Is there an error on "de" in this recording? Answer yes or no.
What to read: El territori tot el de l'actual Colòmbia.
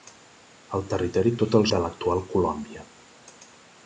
no